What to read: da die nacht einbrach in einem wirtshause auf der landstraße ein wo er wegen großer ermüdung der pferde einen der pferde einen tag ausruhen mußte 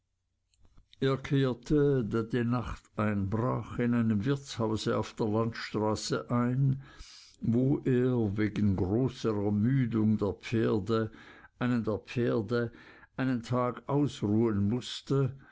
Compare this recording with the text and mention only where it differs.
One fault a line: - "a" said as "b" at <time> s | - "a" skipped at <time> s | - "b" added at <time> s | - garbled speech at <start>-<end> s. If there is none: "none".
none